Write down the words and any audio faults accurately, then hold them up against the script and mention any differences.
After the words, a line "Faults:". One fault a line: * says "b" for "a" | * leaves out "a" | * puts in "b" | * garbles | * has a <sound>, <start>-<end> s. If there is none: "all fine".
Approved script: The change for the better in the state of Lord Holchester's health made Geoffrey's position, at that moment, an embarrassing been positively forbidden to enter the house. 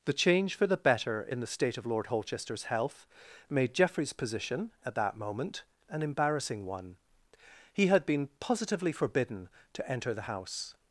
The change for the better in the state of Lord Holchester's health made Geoffrey's position, at that moment, an embarrassing one. He had been positively forbidden to enter the house.
Faults:
* puts in "one He had"